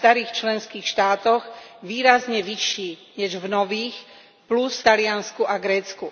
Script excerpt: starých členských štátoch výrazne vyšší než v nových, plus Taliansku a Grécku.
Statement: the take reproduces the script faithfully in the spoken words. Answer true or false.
true